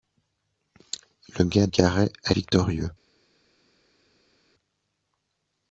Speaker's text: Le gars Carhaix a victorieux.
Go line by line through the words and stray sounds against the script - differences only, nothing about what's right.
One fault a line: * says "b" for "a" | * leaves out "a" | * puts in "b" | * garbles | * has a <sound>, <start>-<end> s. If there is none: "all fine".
all fine